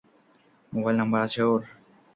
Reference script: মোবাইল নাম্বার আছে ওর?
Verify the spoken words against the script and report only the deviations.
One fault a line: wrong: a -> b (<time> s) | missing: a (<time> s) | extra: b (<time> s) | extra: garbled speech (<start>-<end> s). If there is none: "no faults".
no faults